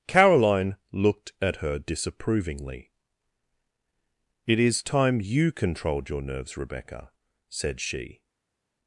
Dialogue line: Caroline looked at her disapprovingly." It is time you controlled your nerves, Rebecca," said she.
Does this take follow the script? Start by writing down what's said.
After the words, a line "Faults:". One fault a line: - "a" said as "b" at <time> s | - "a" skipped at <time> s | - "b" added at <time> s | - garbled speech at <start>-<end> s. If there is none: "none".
Caroline looked at her disapprovingly." It is time you controlled your nerves, Rebecca," said she.
Faults:
none